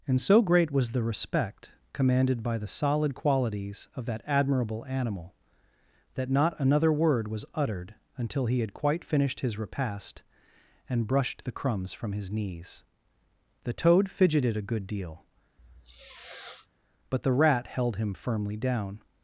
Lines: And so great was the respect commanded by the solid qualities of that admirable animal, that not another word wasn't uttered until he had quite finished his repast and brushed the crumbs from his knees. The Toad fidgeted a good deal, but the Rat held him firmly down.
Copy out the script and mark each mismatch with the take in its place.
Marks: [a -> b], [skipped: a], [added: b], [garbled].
And so great was the respect commanded by the solid qualities of that admirable animal, that not another word [wasn't -> was] uttered until he had quite finished his repast and brushed the crumbs from his knees. The Toad fidgeted a good deal, but the Rat held him firmly down.